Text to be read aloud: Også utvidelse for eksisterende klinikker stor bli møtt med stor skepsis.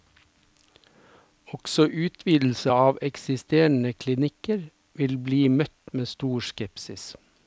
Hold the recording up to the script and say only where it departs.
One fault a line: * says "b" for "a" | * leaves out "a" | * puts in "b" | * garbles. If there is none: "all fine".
* says "av" for "for"
* says "vil" for "stor"